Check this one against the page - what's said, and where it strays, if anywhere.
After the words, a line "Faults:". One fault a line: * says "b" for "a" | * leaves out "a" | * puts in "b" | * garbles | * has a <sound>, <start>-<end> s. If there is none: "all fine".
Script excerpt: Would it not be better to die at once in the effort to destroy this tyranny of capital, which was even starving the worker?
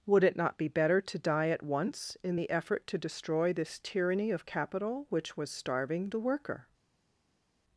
Would it not be better to die at once in the effort to destroy this tyranny of capital, which was starving the worker?
Faults:
* leaves out "even"